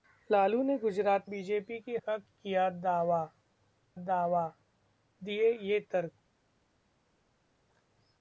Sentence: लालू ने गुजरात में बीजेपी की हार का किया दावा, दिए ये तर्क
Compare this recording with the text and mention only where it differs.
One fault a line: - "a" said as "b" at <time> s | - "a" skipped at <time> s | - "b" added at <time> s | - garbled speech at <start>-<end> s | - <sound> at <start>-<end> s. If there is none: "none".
- "में" skipped at 1.3 s
- "हार" skipped at 2.0 s
- "दावा" added at 3.9 s